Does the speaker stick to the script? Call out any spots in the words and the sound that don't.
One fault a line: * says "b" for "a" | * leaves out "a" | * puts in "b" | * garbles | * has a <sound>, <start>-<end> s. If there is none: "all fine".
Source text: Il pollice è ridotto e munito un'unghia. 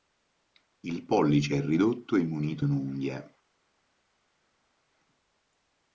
all fine